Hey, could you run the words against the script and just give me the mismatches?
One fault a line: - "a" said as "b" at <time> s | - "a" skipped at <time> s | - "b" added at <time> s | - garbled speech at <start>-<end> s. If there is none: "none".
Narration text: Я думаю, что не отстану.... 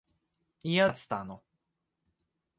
- "думаю что не" skipped at 0.9 s